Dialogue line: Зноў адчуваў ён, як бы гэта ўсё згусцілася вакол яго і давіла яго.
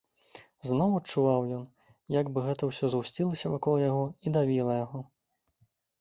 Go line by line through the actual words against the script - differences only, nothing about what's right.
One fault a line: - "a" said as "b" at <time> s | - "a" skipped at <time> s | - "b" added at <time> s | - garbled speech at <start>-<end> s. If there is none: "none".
none